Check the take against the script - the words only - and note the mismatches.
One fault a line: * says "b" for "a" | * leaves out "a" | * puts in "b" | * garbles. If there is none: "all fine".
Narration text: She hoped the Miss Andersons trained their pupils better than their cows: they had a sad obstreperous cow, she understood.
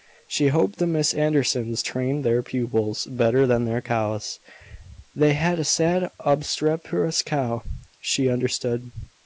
all fine